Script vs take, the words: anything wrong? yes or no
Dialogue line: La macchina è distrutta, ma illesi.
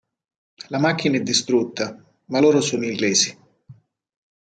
yes